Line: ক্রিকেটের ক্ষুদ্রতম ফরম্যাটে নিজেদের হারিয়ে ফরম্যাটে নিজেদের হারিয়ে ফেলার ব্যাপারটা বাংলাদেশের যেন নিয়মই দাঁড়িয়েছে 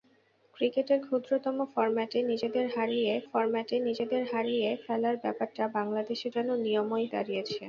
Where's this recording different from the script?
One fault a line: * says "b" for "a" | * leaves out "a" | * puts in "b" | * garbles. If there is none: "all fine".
all fine